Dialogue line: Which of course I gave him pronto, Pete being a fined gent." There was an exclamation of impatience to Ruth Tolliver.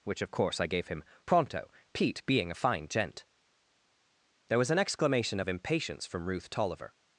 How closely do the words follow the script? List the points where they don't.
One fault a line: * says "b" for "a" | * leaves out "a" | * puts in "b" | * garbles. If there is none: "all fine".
* says "fine" for "fined"
* says "from" for "to"